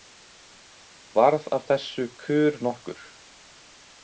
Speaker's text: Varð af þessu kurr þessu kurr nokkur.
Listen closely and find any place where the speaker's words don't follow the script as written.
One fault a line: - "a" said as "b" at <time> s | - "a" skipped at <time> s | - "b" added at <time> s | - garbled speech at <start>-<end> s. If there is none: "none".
- "þessu kurr" skipped at 2.6 s